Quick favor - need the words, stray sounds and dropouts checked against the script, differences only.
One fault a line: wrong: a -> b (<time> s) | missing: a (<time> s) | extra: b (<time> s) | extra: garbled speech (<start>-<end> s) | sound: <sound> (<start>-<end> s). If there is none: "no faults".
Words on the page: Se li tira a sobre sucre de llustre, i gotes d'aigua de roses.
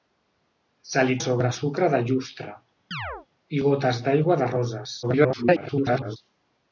missing: tira (1.2 s)
sound: chirp (2.9-3.3 s)
extra: garbled speech (5.0-6.2 s)